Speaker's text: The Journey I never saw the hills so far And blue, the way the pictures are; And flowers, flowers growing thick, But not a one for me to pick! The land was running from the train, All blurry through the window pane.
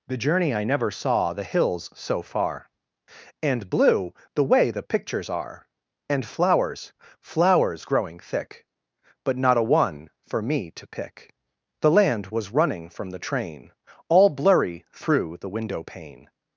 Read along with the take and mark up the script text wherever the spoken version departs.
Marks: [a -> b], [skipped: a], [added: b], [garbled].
The Journey I never saw the hills so far And blue, the way the pictures are; And flowers, flowers growing thick, But not a one for me to pick! The land was running from the train, All blurry through the window pane.